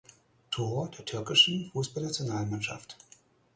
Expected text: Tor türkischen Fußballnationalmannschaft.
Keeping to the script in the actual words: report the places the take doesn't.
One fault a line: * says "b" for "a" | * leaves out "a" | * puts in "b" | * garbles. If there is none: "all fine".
* puts in "der"